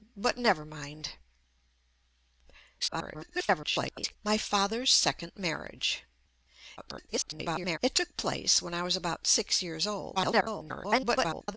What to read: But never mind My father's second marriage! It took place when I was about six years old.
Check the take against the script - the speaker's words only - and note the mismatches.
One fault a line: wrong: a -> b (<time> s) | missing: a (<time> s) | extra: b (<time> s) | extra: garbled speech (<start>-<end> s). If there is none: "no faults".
extra: garbled speech (2.8-4.2 s)
extra: garbled speech (6.8-7.8 s)
extra: garbled speech (10.1-11.6 s)